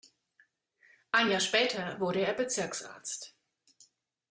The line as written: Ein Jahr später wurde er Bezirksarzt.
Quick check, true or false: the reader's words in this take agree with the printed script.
true